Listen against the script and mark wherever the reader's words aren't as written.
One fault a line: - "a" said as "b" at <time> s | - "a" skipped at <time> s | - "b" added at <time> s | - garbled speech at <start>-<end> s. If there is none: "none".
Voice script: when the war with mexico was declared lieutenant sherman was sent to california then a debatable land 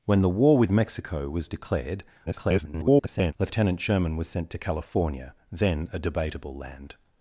- garbled speech at 2.3-3.3 s